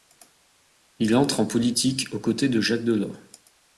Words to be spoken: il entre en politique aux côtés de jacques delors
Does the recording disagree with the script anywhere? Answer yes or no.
no